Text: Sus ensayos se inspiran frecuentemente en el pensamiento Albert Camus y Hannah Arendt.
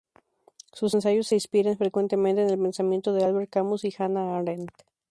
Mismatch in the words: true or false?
true